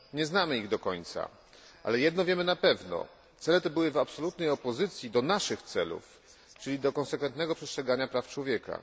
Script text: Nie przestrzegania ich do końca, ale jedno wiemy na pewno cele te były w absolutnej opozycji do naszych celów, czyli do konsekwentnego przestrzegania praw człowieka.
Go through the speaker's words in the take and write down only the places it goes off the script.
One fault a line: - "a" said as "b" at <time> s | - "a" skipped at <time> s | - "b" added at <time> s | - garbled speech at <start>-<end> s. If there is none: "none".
- "przestrzegania" said as "znamy" at 0.2 s